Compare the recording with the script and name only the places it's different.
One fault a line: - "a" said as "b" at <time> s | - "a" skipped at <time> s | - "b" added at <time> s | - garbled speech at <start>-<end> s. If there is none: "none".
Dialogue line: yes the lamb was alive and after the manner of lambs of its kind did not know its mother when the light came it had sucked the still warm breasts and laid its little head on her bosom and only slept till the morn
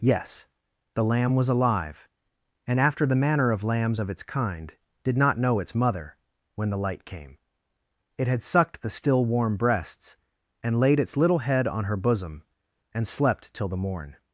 - "only" skipped at 13.1 s